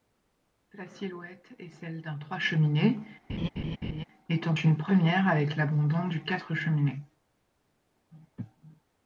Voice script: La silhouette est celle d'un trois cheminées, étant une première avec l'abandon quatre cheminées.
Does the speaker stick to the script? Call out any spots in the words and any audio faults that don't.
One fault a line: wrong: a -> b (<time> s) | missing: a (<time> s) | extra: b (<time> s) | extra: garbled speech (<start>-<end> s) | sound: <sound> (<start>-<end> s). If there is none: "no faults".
sound: laugh (3.3-4.0 s)
extra: du (6.1 s)